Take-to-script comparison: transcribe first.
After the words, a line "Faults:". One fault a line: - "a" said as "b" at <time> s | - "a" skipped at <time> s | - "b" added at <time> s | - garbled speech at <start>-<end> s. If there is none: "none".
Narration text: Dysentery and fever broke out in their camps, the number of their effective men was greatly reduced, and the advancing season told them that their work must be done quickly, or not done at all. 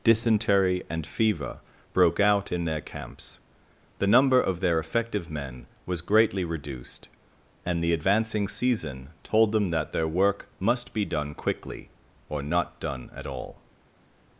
Dysentery and fever broke out in their camps, the number of their effective men was greatly reduced, and the advancing season told them that their work must be done quickly, or not done at all.
Faults:
none